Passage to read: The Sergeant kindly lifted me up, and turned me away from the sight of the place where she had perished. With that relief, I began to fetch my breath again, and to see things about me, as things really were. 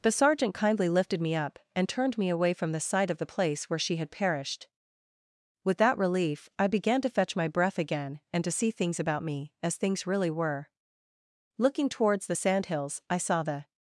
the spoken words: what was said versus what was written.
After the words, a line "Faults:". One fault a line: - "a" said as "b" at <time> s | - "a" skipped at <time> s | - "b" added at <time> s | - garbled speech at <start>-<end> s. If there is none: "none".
The Sergeant kindly lifted me up, and turned me away from the sight of the place where she had perished. With that relief, I began to fetch my breath again, and to see things about me, as things really were. Looking towards the sandhills, I saw the
Faults:
- "Looking towards the sandhills I saw the" added at 11.6 s